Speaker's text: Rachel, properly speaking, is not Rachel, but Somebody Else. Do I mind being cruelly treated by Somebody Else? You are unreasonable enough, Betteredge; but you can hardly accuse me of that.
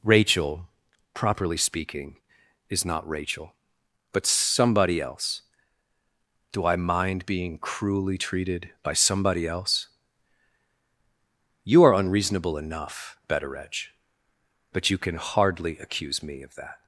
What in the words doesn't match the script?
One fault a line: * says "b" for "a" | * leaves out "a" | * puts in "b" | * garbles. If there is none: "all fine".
all fine